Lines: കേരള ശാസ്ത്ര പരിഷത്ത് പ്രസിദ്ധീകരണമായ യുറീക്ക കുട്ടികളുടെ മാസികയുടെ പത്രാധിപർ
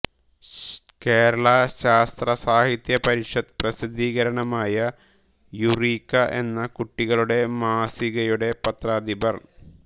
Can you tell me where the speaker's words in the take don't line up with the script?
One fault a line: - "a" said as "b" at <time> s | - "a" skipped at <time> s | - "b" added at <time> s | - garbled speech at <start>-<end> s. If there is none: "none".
- "സാഹിത്യ" added at 2.4 s
- "എന്ന" added at 6.4 s